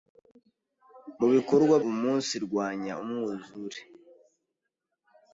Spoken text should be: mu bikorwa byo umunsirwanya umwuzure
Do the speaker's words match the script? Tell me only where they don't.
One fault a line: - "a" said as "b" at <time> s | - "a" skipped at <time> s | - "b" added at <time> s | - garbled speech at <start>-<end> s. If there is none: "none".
- "byo" skipped at 1.8 s